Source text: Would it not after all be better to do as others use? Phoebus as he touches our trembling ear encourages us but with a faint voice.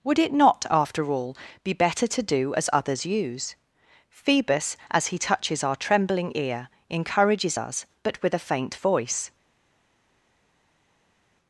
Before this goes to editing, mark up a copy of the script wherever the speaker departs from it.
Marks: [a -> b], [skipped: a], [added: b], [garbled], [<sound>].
Would it not after all be better to do as others use? Phoebus as he touches our trembling ear encourages us but with a faint voice.